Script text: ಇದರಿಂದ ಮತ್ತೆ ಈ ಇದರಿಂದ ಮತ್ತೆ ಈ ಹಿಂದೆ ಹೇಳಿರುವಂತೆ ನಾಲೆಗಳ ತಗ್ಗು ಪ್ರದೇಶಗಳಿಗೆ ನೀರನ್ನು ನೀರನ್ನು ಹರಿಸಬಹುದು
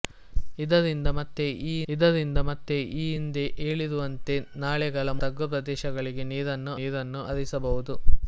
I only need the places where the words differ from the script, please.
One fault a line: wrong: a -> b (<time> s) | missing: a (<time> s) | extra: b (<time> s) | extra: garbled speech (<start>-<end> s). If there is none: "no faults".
no faults